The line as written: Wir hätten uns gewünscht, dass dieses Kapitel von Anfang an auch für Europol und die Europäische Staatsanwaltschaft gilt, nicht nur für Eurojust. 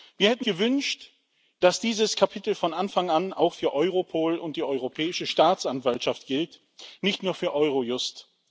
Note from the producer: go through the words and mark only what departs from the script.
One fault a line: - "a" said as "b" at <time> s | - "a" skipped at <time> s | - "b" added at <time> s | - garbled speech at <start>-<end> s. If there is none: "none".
- "uns" skipped at 0.5 s